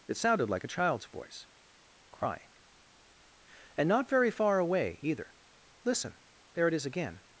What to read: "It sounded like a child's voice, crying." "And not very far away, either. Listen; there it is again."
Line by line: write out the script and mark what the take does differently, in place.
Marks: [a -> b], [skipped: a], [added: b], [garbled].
"It sounded like a child's voice, crying." "And not very far away, either. Listen; there it is again."